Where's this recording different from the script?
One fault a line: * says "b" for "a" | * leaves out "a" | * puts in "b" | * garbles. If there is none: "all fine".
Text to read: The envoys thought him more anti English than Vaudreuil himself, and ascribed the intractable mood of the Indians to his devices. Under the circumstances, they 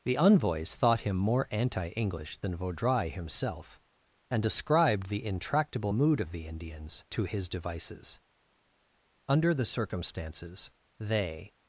all fine